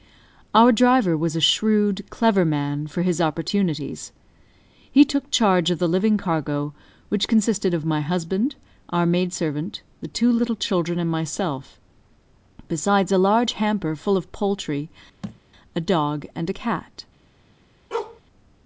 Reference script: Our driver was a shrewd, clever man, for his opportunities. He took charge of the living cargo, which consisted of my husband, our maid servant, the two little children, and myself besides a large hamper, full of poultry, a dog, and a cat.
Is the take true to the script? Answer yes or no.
yes